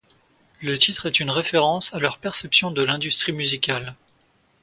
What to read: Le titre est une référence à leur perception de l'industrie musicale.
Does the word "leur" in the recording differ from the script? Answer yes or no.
no